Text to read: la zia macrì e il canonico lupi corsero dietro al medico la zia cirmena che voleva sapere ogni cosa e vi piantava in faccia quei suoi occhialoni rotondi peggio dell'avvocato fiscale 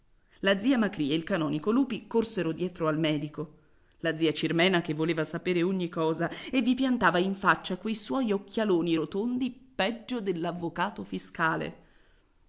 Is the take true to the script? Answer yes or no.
yes